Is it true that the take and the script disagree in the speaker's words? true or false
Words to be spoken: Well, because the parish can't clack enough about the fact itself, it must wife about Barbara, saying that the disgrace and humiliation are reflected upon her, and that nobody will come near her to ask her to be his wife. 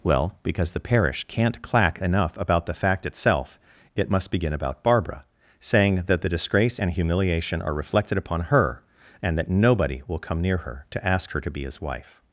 true